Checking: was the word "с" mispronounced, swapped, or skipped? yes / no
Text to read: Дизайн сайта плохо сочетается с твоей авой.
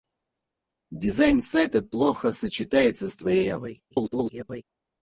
no